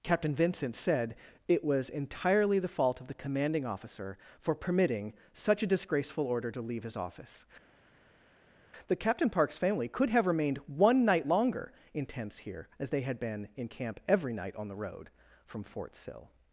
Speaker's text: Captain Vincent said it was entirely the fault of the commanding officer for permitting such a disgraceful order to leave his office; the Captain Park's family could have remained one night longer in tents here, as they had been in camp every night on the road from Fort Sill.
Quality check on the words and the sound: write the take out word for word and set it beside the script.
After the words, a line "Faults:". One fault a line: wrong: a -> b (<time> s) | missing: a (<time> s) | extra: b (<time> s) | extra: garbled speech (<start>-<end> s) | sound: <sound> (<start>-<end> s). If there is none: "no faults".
Captain Vincent said it was entirely the fault of the commanding officer for permitting such a disgraceful order to leave his office; the Captain Park's family could have remained one night longer in tents here, as they had been in camp every night on the road from Fort Sill.
Faults:
no faults